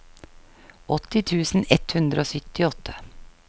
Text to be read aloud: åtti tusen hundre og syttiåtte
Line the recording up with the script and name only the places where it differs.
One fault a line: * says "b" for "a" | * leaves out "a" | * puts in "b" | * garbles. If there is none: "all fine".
* puts in "ett"